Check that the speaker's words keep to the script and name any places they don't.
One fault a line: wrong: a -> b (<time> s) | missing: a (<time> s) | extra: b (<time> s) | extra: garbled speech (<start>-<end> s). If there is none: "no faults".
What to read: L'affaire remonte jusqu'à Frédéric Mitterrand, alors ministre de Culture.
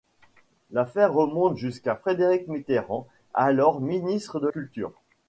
no faults